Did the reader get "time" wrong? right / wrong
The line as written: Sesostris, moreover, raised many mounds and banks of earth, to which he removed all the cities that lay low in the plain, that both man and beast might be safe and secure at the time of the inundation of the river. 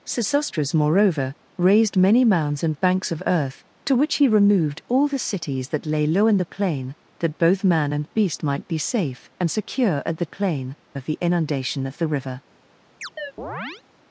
wrong